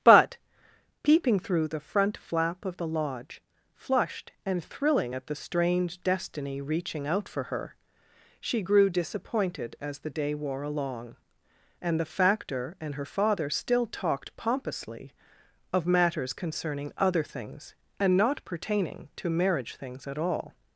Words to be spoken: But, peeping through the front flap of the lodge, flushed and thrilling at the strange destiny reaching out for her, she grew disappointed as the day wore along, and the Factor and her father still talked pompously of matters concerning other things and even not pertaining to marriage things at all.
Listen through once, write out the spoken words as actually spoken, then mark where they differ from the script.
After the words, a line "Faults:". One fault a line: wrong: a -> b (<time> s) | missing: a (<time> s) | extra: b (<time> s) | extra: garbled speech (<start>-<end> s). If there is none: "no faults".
But, peeping through the front flap of the lodge, flushed and thrilling at the strange destiny reaching out for her, she grew disappointed as the day wore along, and the Factor and her father still talked pompously of matters concerning other things and not pertaining to marriage things at all.
Faults:
missing: even (18.1 s)